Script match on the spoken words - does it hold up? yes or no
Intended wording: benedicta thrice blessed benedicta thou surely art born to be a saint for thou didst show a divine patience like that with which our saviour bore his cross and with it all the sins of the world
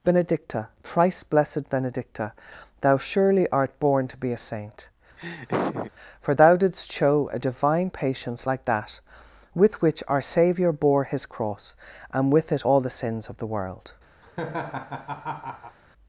yes